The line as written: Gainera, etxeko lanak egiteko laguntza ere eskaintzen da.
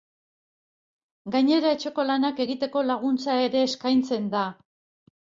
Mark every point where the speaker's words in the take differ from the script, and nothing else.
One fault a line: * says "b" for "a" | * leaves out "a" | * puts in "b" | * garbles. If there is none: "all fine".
all fine